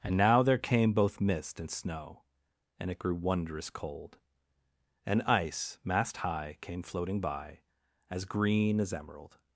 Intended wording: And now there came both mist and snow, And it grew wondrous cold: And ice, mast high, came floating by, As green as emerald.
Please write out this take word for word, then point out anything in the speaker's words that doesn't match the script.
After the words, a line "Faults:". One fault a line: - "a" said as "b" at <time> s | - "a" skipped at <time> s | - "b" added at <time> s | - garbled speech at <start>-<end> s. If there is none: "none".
And now there came both mist and snow, And it grew wondrous cold: And ice, mast high, came floating by, As green as emerald.
Faults:
none